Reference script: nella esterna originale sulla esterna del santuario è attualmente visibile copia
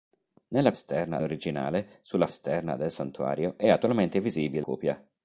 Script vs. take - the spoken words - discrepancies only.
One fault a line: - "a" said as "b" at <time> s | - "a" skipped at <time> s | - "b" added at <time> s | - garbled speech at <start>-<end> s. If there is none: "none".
none